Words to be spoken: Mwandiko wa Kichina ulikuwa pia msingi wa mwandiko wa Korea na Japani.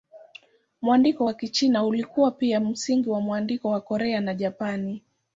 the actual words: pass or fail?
pass